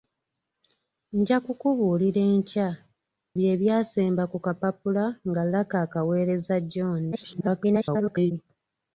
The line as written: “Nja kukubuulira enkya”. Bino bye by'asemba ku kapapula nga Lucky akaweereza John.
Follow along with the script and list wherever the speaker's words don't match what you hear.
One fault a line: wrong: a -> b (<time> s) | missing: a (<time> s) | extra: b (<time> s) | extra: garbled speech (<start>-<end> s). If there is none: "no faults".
missing: Bino (2.7 s)
extra: garbled speech (7.1-8.3 s)